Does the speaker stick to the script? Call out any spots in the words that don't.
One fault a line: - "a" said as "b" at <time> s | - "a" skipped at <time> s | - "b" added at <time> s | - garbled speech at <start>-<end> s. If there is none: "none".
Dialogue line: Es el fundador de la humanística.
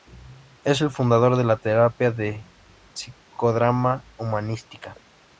- "terapia de psicodrama" added at 1.6 s